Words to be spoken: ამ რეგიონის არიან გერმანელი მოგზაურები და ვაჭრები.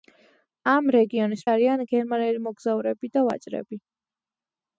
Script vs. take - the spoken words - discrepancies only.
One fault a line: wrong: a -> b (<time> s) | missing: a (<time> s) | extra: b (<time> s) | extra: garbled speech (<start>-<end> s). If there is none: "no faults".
no faults